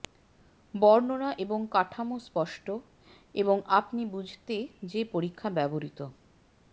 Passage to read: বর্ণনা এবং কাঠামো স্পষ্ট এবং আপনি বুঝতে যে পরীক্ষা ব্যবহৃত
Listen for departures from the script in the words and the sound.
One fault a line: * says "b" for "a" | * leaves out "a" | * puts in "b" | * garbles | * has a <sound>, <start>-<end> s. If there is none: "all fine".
all fine